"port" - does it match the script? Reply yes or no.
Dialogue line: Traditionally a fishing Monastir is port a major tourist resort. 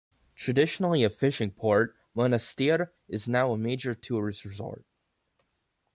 no